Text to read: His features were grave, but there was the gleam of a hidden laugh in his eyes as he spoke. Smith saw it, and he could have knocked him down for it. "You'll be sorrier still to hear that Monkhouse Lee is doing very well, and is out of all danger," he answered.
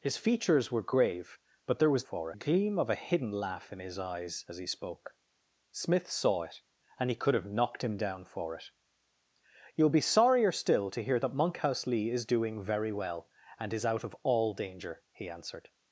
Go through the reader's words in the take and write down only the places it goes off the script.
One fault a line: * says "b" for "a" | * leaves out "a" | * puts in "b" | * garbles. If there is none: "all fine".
* says "for" for "the"